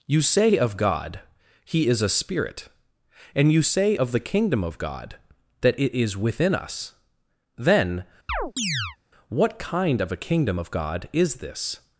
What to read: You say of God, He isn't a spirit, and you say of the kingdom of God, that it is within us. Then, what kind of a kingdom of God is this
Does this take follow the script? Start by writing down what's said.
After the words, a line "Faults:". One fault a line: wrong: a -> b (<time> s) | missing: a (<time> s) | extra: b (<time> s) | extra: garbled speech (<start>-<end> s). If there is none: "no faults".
You say of God, He is a spirit, and you say of the kingdom of God, that it is within us. Then, what kind of a kingdom of God is this
Faults:
wrong: isn't -> is (1.9 s)